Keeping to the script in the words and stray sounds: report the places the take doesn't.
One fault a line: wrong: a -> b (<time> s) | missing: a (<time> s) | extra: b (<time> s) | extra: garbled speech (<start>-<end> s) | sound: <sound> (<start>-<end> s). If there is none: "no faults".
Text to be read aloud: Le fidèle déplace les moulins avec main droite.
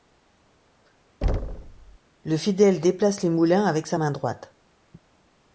sound: thud (1.2-2.0 s)
extra: sa (3.9 s)